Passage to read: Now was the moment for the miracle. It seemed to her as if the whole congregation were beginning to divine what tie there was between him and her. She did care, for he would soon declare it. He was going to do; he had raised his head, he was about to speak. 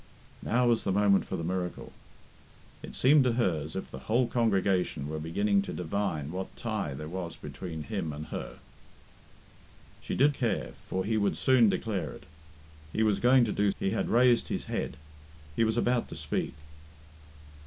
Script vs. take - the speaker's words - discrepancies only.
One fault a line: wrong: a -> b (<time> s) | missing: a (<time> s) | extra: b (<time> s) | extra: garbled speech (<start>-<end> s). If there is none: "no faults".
no faults